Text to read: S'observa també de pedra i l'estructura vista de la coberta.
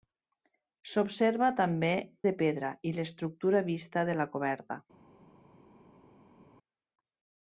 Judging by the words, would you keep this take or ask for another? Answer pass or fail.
pass